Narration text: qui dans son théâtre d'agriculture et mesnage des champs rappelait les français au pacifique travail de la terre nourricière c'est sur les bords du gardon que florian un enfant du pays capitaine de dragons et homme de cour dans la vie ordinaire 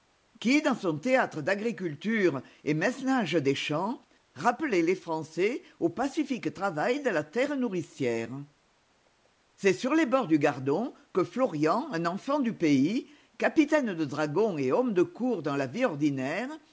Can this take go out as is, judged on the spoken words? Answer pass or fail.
pass